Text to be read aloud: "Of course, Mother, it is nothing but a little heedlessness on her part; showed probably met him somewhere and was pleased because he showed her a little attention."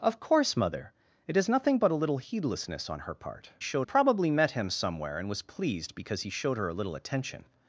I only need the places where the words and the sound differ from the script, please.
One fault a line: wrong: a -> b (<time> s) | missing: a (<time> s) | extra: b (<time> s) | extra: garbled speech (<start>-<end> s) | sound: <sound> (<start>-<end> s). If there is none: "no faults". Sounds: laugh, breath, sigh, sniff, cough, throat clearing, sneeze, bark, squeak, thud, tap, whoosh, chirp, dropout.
no faults